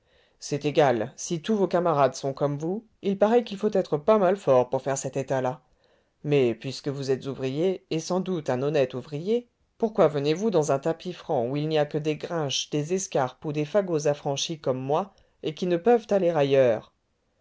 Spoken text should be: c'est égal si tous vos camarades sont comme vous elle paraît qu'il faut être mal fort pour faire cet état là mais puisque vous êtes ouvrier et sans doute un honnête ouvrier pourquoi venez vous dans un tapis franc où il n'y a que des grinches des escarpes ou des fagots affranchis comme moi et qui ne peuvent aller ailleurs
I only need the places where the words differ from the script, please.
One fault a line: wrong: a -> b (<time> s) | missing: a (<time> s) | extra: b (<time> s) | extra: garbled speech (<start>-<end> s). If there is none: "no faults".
wrong: elle -> il (3.0 s)
extra: pas (4.0 s)